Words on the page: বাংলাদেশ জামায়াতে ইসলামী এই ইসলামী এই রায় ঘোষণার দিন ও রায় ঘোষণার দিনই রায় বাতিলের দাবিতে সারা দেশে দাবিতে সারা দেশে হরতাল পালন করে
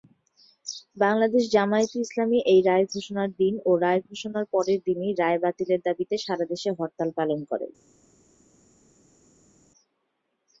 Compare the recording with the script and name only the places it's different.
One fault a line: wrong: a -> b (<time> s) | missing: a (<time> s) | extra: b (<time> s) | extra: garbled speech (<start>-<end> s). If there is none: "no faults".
missing: ইসলামী এই (2.6 s)
extra: পরের (4.5 s)
missing: দাবিতে সারা দেশে (6.7 s)